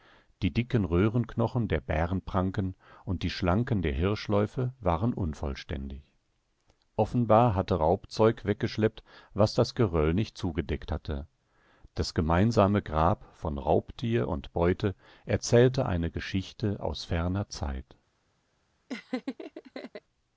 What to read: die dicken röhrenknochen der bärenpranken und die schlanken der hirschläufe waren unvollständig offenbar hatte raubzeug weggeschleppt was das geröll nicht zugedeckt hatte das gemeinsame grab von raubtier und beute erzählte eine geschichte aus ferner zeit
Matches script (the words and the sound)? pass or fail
fail